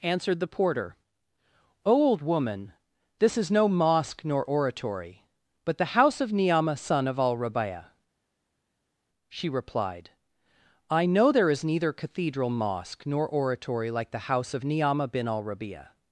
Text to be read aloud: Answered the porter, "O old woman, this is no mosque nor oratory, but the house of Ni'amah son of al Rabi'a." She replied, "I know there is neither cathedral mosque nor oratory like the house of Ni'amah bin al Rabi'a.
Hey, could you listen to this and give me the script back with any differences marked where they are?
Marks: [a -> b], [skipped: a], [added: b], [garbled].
Answered the porter, "O old woman, this is no mosque nor oratory, but the house of Ni'amah son of al Rabi'a." She replied, "I know there is neither cathedral mosque nor oratory like the house of Ni'amah bin al Rabi'a.